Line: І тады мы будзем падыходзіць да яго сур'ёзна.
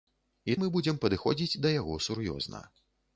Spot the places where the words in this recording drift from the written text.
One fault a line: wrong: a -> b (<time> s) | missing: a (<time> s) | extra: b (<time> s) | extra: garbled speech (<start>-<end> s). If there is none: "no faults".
missing: тады (0.6 s)